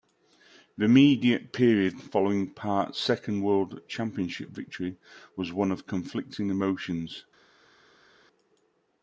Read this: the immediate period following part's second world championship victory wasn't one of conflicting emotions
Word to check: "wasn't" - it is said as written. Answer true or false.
false